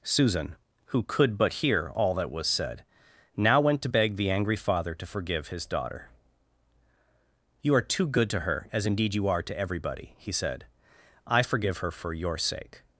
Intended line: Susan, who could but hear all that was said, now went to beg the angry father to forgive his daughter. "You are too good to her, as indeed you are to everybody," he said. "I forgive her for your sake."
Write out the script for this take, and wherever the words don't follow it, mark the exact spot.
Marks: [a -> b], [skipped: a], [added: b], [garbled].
Susan, who could but hear all that was said, now went to beg the angry father to forgive his daughter. "You are too good to her, as indeed you are to everybody," he said. "I forgive her for your sake."